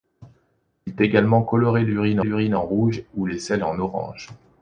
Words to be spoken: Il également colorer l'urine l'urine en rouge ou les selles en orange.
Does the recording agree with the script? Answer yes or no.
yes